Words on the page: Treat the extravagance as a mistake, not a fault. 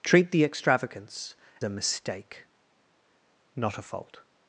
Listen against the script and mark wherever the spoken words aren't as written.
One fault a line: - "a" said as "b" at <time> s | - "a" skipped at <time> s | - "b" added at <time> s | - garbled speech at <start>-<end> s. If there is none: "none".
- "as" skipped at 1.4 s